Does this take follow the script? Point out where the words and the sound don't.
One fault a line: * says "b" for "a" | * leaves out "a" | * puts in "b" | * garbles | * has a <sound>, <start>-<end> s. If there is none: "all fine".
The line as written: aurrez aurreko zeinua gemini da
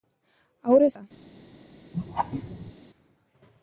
* leaves out "aurreko zeinua gemini"
* has a laugh, 1.9-2.7 s